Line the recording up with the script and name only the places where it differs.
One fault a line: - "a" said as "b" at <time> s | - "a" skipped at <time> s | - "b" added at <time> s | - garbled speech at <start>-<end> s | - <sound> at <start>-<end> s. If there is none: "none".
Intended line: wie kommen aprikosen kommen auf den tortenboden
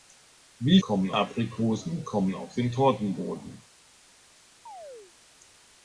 - chirp at 4.7-5.1 s